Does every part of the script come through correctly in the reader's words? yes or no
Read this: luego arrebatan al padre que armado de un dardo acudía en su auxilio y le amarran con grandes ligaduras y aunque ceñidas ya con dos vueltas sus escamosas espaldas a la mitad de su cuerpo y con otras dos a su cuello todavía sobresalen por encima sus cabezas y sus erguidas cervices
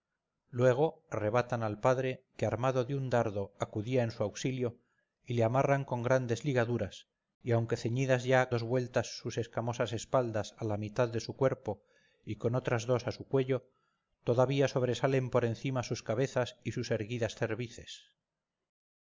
no